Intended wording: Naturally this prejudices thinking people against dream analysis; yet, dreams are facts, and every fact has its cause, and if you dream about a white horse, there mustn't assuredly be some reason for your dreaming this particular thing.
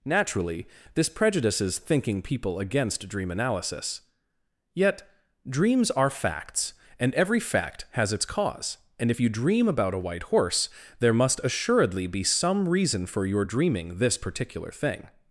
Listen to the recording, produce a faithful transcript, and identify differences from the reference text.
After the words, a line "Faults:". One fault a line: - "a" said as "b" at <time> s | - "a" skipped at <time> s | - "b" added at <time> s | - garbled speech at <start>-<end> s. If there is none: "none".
Naturally this prejudices thinking people against dream analysis; yet, dreams are facts, and every fact has its cause, and if you dream about a white horse, there must assuredly be some reason for your dreaming this particular thing.
Faults:
- "mustn't" said as "must" at 11.1 s